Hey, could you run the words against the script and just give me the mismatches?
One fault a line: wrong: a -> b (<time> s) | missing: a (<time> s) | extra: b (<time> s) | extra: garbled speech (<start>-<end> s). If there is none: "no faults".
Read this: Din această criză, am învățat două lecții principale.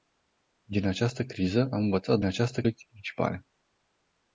wrong: două -> această (2.3 s)